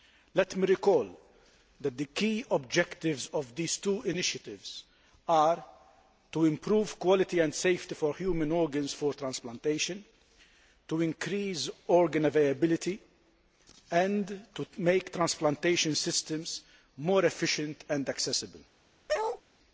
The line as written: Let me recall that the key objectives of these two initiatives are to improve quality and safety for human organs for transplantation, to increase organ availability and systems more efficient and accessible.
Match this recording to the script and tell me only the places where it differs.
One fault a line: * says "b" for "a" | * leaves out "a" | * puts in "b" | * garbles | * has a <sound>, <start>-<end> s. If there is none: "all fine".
* puts in "to make transplantation"
* has a bark, 19.1-19.4 s